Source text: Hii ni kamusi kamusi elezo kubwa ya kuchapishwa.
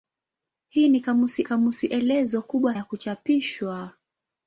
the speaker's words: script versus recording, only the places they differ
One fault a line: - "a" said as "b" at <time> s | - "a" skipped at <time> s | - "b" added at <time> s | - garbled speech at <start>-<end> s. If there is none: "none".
none